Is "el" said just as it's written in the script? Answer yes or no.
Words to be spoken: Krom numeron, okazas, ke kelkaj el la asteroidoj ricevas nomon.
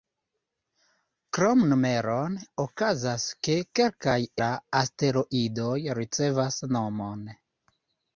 no